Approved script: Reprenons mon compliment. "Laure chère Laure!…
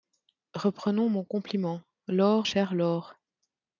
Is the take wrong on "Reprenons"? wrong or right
right